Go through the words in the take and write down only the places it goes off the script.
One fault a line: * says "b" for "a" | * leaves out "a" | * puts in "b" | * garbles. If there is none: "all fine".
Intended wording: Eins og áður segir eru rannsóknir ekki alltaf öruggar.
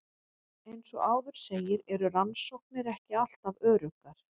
all fine